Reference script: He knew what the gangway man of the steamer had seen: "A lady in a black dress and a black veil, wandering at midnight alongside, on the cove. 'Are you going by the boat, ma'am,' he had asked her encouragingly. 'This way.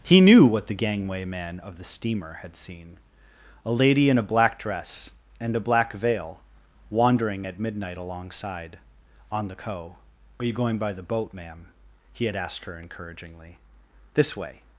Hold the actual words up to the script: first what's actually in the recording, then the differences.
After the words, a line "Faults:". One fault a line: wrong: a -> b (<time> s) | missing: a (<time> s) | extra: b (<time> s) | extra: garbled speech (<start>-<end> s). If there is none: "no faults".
He knew what the gangway man of the steamer had seen: "A lady in a black dress and a black veil, wandering at midnight alongside, on the cove. 'Are you going by the boat, ma'am,' he had asked her encouragingly. 'This way.
Faults:
no faults